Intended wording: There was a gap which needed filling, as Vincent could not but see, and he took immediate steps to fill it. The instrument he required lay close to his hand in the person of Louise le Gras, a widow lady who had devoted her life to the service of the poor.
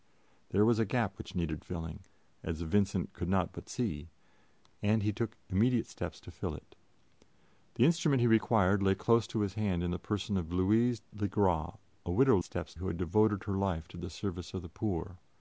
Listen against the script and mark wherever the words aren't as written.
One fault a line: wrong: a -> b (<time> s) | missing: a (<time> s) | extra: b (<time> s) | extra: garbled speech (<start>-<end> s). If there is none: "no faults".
wrong: lady -> steps (12.4 s)